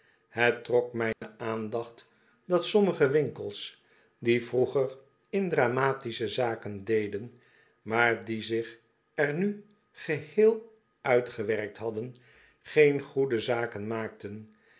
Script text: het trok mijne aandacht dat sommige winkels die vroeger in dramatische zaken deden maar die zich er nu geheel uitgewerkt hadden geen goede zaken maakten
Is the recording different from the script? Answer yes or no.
no